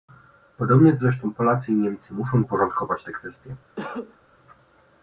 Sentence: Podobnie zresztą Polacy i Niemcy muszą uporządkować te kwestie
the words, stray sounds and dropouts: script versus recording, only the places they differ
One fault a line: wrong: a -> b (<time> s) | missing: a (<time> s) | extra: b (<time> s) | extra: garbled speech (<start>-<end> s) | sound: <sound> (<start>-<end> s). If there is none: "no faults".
sound: cough (3.8-4.2 s)